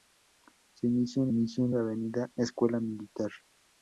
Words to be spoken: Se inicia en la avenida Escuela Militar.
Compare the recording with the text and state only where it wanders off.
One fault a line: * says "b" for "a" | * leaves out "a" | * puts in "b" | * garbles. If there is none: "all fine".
* puts in "inicia en"